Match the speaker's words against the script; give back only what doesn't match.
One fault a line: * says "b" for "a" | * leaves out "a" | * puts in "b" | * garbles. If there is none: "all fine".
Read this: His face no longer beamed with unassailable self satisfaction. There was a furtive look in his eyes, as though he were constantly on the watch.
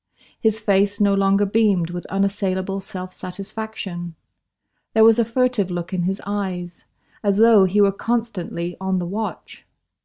all fine